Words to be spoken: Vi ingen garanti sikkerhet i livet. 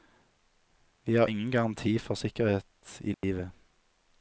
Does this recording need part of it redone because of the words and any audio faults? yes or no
yes